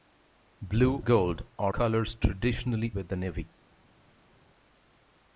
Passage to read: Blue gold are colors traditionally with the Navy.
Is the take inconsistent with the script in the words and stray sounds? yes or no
no